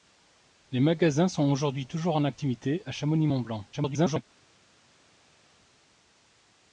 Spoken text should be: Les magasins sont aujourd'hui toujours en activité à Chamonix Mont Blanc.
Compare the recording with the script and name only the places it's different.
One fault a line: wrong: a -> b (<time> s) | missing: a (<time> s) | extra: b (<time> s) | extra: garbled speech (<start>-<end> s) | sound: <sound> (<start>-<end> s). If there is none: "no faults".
extra: garbled speech (3.7-4.2 s)